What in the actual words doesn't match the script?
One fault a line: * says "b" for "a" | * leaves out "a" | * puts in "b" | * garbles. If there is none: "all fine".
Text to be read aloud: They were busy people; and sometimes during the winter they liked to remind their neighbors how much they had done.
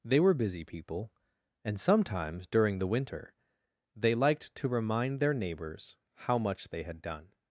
all fine